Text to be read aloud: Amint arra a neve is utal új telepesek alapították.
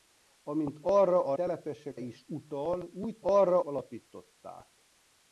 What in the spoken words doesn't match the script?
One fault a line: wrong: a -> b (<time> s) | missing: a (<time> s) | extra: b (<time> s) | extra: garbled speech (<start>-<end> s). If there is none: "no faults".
wrong: neve -> telepesek (1.3 s)
wrong: telepesek -> arra (3.2 s)